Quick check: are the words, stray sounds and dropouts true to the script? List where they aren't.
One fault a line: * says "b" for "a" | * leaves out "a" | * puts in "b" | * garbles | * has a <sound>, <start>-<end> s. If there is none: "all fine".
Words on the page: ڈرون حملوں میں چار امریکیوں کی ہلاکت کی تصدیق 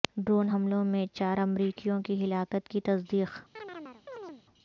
* has a chirp, 3.6-4.4 s